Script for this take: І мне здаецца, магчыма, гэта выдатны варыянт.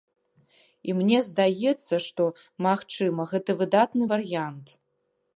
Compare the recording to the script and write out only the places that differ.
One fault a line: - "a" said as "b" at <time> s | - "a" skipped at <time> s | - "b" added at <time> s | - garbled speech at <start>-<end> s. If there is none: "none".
- "што" added at 2.0 s